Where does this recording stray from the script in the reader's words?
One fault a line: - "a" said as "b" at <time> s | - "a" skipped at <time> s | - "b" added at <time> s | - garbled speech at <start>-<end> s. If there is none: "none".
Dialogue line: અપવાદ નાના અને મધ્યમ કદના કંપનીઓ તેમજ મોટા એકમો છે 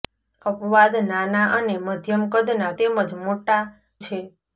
- "કંપનીઓ" skipped at 2.7 s
- "એકમો" skipped at 3.6 s